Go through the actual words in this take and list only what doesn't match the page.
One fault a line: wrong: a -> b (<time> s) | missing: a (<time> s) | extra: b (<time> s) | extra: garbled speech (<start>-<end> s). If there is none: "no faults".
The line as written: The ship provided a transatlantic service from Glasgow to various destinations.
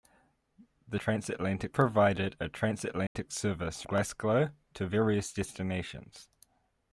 wrong: ship -> transatlantic (0.9 s)
missing: from (3.8 s)